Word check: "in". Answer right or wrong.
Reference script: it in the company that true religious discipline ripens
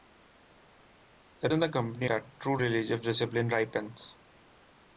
right